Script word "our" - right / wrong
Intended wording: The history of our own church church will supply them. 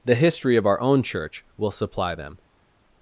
right